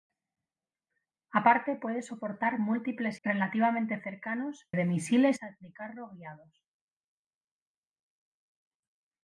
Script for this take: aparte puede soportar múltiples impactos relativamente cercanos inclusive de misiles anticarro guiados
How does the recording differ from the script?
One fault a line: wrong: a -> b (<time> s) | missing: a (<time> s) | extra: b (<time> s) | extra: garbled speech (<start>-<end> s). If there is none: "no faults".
missing: impactos (3.2 s)
missing: inclusive (4.7 s)